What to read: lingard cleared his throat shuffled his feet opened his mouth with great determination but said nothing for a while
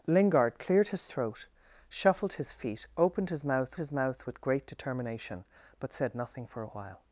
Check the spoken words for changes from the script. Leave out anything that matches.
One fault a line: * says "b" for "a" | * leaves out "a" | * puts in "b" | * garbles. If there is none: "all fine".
* puts in "his mouth"